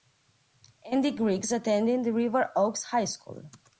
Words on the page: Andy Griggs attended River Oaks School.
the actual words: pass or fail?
fail